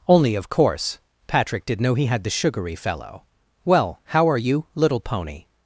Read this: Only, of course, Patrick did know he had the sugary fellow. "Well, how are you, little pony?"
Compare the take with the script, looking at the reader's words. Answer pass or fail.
pass